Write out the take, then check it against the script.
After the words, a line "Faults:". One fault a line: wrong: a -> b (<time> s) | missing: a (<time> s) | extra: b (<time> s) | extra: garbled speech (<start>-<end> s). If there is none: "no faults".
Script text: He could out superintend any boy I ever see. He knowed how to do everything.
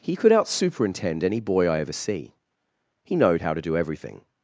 He could out superintend any boy I ever see. He knowed how to do everything.
Faults:
no faults